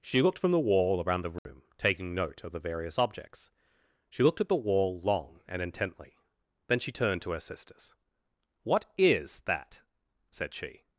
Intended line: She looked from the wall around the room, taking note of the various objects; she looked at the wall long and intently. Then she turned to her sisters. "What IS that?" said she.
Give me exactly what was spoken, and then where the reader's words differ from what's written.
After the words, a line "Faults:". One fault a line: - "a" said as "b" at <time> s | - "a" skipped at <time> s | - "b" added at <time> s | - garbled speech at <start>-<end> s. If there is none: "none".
She looked from the wall around the room, taking note of the various objects; she looked at the wall long and intently. Then she turned to her sisters. "What IS that?" said she.
Faults:
none